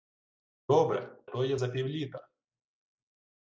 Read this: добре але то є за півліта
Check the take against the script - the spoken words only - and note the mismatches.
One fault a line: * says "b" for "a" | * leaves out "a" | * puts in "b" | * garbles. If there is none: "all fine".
* leaves out "але"